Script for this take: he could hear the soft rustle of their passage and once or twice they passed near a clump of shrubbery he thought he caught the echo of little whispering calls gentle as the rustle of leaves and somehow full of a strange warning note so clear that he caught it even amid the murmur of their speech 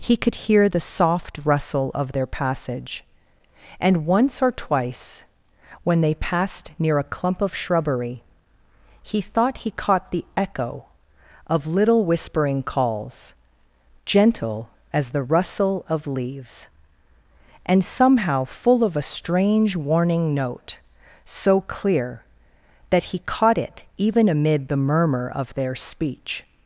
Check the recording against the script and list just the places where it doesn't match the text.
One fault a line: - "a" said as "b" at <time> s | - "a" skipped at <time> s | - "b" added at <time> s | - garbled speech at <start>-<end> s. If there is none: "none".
- "when" added at 5.8 s